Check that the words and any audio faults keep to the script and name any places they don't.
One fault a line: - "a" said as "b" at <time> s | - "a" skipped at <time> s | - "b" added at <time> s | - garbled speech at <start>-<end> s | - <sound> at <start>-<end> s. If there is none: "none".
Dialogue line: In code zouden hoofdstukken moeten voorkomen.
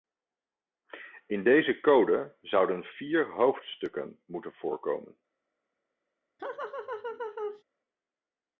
- "deze" added at 1.4 s
- "vier" added at 2.8 s
- laugh at 6.4-7.6 s